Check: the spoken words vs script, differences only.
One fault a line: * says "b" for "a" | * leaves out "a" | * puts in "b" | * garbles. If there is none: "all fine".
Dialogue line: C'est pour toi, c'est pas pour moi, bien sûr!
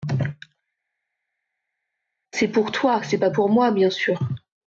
all fine